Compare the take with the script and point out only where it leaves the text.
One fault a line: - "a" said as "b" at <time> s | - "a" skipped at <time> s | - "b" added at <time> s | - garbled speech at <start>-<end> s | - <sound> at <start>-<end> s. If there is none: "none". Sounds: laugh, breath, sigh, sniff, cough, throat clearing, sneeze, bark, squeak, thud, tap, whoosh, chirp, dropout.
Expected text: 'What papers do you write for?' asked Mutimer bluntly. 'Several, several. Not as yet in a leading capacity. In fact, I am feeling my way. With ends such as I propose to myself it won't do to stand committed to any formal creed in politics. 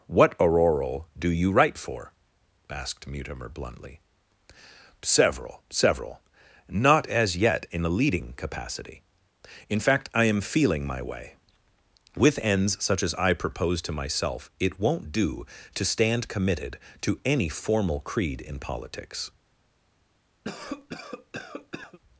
- "papers" said as "auroral" at 0.4 s
- cough at 20.4-22.0 s